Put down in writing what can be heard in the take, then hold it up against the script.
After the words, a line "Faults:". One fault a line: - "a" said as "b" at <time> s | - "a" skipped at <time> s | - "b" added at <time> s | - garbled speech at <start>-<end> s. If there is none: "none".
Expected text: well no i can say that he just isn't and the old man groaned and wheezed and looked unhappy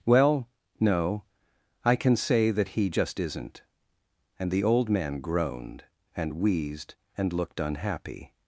well no i can say that he just isn't and the old man groaned and wheezed and looked unhappy
Faults:
none